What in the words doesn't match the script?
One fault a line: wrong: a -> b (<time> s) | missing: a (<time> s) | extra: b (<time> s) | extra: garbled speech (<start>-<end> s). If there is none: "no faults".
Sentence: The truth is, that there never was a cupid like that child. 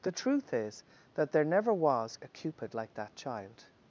no faults